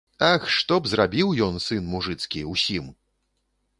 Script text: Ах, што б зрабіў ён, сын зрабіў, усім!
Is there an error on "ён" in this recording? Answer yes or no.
no